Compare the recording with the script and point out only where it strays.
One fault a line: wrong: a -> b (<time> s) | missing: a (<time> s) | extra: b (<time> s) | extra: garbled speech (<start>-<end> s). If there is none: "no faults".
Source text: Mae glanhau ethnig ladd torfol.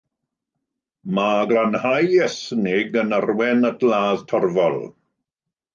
extra: yn arwain at (3.0 s)